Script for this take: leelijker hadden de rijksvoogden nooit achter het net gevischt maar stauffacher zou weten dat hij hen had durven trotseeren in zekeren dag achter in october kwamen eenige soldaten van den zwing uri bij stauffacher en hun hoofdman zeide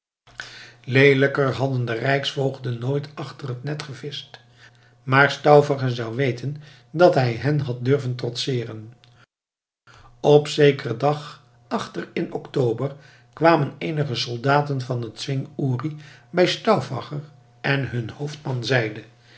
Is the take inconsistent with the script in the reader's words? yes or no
yes